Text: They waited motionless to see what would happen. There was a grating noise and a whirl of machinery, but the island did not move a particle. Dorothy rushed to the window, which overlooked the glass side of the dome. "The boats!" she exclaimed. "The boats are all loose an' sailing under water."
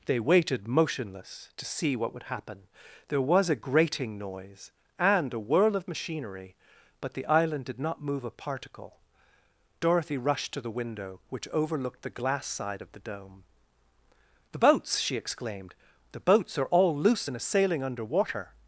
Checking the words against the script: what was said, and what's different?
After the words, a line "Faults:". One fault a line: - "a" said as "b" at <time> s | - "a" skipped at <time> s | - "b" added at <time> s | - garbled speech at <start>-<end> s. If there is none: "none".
They waited motionless to see what would happen. There was a grating noise and a whirl of machinery, but the island did not move a particle. Dorothy rushed to the window, which overlooked the glass side of the dome. "The boats!" she exclaimed. "The boats are all loose and a' sailing under water."
Faults:
- "an" said as "and a" at 17.3 s